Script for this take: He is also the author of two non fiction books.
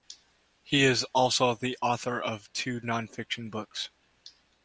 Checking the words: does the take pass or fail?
pass